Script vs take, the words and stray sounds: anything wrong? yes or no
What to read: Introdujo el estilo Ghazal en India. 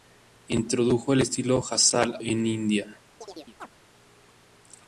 yes